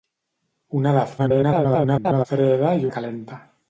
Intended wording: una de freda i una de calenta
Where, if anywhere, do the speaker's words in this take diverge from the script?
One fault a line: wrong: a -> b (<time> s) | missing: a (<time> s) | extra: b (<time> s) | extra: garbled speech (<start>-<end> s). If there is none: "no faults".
extra: garbled speech (1.2-2.3 s)
missing: una (2.9 s)